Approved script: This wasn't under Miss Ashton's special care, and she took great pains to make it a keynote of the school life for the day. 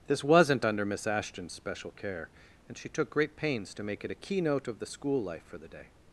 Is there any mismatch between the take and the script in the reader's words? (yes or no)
no